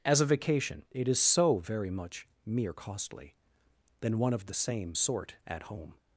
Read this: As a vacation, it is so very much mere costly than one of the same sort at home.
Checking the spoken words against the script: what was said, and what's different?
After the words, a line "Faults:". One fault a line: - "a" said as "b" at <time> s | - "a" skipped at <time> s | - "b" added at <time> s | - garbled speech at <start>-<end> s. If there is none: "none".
As a vacation, it is so very much mere costly than one of the same sort at home.
Faults:
none